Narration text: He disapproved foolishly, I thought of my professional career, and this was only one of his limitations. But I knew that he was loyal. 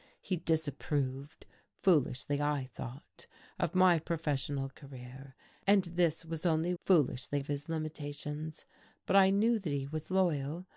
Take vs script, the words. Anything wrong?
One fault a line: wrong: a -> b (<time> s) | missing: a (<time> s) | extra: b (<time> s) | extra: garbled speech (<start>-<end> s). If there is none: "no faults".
wrong: one -> foolishly (6.8 s)